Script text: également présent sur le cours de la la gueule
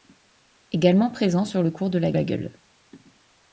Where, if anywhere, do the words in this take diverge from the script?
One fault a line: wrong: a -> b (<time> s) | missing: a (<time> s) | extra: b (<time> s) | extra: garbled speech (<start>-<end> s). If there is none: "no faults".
no faults